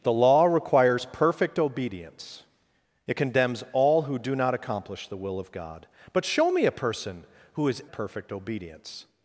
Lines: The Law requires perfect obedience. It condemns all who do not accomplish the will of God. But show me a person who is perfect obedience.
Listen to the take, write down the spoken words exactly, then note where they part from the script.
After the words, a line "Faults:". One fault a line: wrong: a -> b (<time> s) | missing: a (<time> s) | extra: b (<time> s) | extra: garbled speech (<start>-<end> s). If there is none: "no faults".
The Law requires perfect obedience. It condemns all who do not accomplish the will of God. But show me a person who is perfect obedience.
Faults:
no faults